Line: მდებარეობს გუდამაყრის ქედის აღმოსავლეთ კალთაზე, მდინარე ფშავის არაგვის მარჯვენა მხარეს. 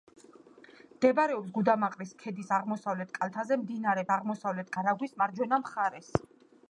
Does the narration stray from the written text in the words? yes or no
yes